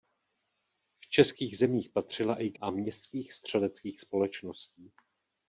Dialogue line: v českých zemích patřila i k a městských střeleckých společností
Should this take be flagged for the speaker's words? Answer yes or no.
no